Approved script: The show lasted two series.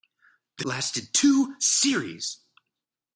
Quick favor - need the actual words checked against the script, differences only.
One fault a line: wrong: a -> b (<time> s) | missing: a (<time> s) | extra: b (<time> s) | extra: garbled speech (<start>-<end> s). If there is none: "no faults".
missing: show (0.7 s)